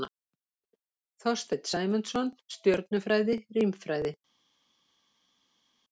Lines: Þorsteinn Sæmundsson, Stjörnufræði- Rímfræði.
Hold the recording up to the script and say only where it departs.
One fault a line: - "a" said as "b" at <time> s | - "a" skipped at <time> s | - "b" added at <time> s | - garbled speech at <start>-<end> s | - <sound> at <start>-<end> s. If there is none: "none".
none